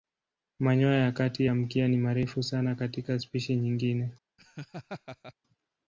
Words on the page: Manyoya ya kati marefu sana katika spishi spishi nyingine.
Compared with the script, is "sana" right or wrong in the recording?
right